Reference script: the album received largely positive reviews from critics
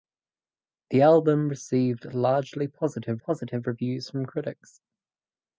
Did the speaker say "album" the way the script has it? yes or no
yes